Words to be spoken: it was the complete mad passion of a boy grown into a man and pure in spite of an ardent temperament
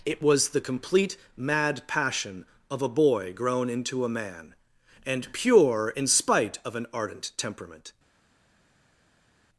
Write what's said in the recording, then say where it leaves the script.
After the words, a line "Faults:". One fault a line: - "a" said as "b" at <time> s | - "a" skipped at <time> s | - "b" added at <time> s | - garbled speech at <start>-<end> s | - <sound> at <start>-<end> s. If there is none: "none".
it was the complete mad passion of a boy grown into a man and pure in spite of an ardent temperament
Faults:
none